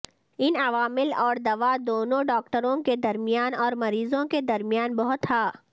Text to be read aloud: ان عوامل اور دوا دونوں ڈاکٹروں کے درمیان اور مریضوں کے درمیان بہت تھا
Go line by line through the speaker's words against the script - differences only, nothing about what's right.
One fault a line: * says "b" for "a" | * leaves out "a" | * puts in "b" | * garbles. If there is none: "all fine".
all fine